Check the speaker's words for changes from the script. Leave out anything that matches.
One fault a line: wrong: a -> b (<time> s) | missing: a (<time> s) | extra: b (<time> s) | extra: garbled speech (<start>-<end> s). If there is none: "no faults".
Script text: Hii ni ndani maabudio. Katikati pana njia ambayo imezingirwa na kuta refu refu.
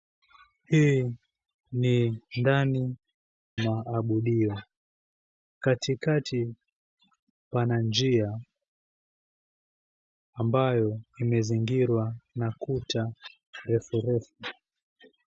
no faults